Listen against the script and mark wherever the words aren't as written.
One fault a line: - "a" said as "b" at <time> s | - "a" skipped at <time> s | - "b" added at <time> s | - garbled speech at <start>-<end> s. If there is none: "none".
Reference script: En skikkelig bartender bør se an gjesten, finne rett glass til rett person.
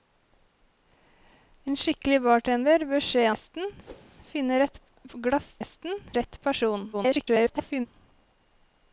- "an" skipped at 3.3 s
- "til" said as "gjesten" at 5.6 s
- garbled speech at 6.9-7.9 s